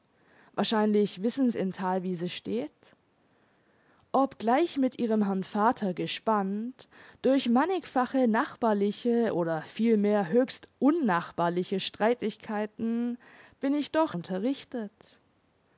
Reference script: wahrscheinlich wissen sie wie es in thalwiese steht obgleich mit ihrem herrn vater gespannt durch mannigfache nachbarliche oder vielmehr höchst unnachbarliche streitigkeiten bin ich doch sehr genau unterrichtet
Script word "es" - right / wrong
wrong